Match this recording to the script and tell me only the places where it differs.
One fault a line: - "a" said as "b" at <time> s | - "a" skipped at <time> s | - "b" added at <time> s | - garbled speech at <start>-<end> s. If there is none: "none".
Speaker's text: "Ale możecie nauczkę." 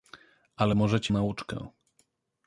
none